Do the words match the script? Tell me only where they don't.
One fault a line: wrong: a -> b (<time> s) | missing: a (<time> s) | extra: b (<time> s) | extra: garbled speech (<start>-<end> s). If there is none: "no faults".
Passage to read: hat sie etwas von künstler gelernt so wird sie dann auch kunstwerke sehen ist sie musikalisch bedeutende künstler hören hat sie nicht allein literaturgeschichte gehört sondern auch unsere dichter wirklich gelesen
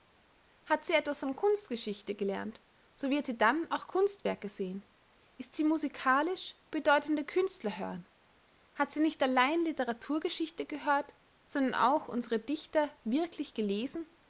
wrong: künstler -> kunstgeschichte (1.4 s)